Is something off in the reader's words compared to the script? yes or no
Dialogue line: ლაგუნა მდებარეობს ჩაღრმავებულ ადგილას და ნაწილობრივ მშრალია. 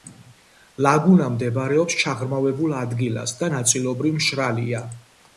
no